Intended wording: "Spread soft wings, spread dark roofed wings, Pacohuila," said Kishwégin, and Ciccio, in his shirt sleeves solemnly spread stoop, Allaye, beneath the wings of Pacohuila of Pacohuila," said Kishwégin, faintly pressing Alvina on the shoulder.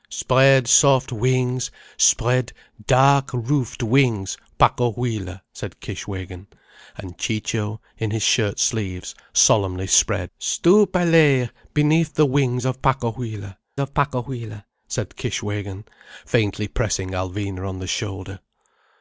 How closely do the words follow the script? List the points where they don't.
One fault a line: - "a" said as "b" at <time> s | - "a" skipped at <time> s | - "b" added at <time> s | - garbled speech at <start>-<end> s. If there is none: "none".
none